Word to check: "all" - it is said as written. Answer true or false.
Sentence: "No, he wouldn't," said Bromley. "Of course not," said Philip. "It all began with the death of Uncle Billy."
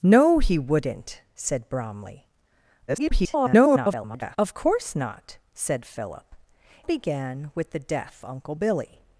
false